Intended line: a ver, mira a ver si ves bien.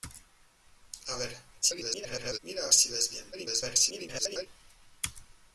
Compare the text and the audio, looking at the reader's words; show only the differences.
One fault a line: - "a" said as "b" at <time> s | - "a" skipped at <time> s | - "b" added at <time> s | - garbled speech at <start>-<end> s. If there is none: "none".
- garbled speech at 1.6-2.4 s
- "ver" skipped at 2.7 s
- garbled speech at 3.3-4.5 s